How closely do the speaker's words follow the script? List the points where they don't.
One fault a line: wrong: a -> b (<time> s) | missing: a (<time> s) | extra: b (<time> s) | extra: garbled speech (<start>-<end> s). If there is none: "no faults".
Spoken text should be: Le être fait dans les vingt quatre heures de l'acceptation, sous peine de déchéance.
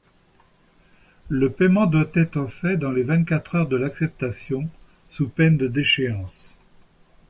extra: paiement doit (1.5 s)